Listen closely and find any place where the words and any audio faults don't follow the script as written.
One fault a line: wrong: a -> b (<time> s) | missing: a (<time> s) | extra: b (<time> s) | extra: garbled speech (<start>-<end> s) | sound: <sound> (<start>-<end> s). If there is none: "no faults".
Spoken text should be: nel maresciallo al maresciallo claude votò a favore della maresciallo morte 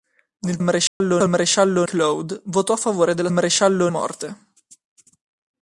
sound: dropout (0.9-1.0 s)